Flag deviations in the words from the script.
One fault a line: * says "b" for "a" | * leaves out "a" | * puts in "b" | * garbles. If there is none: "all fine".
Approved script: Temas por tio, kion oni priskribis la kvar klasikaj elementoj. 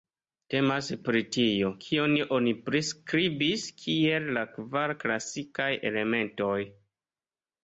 * says "pri" for "por"
* puts in "kiel"